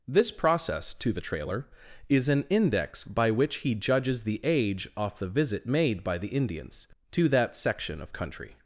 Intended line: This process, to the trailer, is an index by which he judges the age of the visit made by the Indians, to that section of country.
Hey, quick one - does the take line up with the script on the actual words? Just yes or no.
no